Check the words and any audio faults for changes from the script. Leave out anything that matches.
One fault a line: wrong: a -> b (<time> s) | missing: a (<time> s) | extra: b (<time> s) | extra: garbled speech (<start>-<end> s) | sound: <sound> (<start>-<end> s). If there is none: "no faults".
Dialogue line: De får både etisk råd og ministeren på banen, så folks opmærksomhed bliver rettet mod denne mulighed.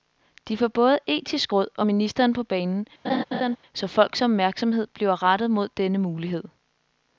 sound: laugh (3.0-3.6 s)